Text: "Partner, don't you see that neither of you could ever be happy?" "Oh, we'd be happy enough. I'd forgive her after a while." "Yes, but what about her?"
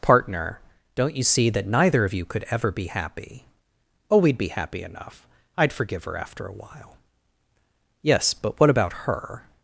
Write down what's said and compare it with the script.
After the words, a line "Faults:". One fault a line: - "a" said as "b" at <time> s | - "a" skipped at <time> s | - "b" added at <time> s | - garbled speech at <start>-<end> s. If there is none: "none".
"Partner, don't you see that neither of you could ever be happy?" "Oh, we'd be happy enough. I'd forgive her after a while." "Yes, but what about her?"
Faults:
none